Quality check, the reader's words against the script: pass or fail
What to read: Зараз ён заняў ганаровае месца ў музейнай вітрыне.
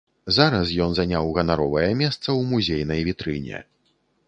pass